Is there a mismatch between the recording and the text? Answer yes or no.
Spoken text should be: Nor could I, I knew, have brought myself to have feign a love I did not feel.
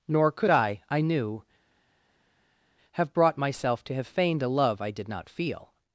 yes